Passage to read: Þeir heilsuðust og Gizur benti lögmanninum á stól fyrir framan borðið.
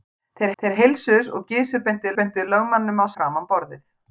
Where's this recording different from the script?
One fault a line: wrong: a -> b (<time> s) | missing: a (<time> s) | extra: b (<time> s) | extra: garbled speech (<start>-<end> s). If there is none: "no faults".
extra: þeir (0.6 s)
extra: benti (2.2 s)
missing: stól fyrir (3.1 s)